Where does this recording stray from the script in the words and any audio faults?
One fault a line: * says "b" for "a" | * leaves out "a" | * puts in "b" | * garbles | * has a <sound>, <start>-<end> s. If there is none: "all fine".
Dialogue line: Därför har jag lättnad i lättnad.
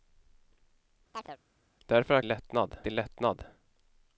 * has a chirp, 1.1-1.4 s